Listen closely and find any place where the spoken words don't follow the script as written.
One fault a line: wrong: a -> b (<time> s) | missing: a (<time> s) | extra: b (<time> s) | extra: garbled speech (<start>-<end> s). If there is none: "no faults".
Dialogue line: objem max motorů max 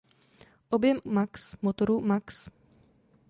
no faults